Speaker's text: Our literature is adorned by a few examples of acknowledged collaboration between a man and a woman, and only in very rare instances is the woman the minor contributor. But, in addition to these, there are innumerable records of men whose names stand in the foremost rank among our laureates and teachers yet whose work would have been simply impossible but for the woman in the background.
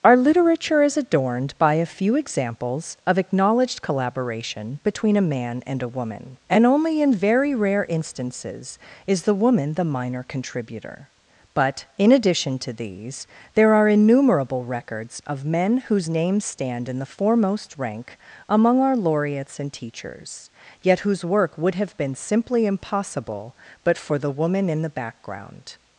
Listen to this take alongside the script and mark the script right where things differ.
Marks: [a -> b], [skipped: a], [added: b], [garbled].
Our literature is adorned by a few examples of acknowledged collaboration between a man and a woman, and only in very rare instances is the woman the minor contributor. But, in addition to these, there are innumerable records of men whose names stand in the foremost rank among our laureates and teachers yet whose work would have been simply impossible but for the woman in the background.